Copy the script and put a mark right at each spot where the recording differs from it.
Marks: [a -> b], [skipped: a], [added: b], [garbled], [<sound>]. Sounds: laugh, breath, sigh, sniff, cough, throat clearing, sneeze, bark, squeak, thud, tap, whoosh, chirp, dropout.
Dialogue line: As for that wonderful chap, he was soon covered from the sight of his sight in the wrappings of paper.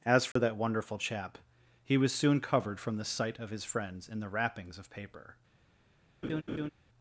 As for [dropout] that wonderful chap, he was soon covered from the sight of his [sight -> friends] in the wrappings of paper. [laugh]